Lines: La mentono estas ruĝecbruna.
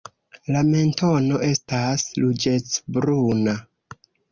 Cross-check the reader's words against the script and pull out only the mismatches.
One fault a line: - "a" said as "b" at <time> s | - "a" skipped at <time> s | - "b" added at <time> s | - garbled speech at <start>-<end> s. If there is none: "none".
none